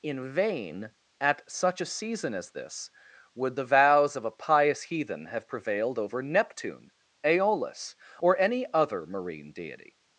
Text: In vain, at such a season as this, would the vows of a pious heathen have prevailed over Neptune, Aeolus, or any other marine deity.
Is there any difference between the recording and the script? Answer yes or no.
no